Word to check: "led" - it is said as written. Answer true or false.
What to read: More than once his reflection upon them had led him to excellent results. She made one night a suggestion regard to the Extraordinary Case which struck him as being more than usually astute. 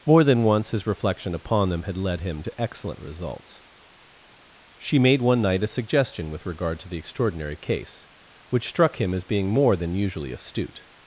true